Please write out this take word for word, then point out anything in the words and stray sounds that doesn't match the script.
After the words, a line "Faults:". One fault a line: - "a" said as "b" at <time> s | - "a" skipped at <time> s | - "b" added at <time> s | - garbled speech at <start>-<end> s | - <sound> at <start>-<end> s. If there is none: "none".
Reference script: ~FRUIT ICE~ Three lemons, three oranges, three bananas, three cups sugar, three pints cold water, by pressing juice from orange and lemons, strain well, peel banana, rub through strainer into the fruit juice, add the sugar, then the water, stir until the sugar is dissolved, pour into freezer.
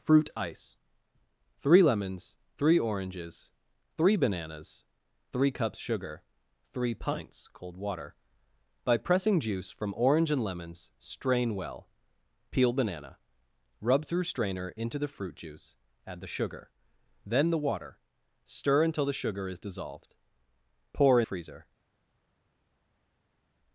~FRUIT ICE~ Three lemons, three oranges, three bananas, three cups sugar, three pints cold water, by pressing juice from orange and lemons, strain well, peel banana, rub through strainer into the fruit juice, add the sugar, then the water, stir until the sugar is dissolved, pour freezer.
Faults:
- "into" skipped at 21.2 s